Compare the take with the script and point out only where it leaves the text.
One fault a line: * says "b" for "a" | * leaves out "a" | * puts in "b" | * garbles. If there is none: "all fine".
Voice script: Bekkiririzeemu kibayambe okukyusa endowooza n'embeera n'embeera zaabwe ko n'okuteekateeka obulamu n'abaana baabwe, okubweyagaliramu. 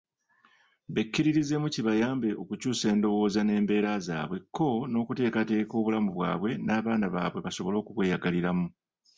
* leaves out "n'embeera"
* puts in "bwabwe"
* puts in "basobole"